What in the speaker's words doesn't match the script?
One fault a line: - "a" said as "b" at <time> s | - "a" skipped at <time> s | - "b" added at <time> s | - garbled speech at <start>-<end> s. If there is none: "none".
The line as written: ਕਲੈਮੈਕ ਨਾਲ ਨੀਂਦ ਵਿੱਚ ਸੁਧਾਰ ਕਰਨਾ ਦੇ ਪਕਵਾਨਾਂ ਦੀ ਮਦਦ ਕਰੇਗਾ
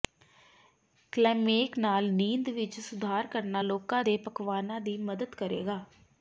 - "ਲੋਕਾਂ" added at 3.6 s